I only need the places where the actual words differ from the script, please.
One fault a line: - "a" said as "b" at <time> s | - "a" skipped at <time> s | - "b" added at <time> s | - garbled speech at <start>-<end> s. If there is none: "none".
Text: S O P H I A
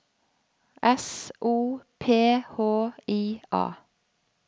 none